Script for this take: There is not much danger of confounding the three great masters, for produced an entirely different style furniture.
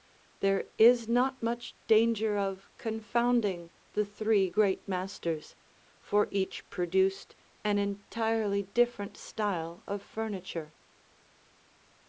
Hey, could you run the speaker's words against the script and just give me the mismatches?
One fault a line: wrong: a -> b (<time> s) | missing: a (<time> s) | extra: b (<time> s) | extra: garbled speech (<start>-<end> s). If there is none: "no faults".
extra: each (6.3 s)
extra: of (9.9 s)